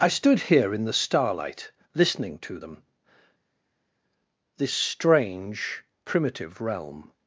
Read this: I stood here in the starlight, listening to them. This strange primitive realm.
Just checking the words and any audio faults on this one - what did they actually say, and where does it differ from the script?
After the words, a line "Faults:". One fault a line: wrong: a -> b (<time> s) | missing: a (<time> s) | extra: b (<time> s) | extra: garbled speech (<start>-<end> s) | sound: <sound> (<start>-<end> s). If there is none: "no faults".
I stood here in the starlight, listening to them. This strange primitive realm.
Faults:
no faults